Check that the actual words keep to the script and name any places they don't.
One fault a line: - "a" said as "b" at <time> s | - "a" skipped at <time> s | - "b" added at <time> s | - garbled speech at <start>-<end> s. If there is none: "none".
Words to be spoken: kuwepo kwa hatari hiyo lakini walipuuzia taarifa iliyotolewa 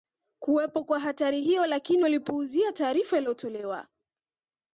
none